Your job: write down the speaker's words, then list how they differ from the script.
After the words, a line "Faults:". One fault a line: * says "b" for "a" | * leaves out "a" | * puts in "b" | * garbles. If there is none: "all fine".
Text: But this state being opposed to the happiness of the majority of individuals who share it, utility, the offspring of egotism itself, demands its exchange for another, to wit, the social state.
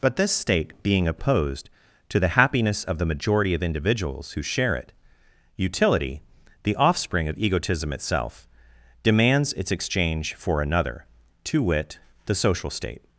But this state being opposed to the happiness of the majority of individuals who share it, utility, the offspring of egotism itself, demands its exchange for another, to wit, the social state.
Faults:
all fine